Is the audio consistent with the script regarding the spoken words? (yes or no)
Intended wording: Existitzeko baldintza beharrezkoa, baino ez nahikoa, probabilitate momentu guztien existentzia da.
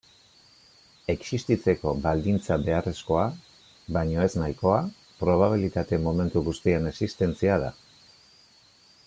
yes